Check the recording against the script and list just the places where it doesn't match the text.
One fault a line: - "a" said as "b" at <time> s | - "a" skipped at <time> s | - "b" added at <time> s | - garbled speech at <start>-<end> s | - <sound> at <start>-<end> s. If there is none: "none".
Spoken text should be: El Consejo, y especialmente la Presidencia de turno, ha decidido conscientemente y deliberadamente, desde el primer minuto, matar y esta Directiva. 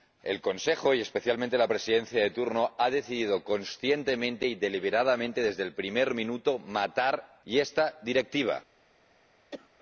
- cough at 9.5-9.7 s